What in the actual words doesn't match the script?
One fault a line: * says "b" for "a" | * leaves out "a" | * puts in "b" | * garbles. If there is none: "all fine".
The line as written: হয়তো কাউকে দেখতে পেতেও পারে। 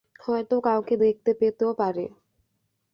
all fine